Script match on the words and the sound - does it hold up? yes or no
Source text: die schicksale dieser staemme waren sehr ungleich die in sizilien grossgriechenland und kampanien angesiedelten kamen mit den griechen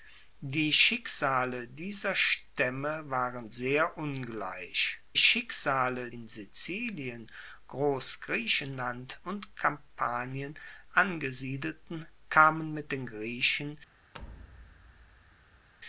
no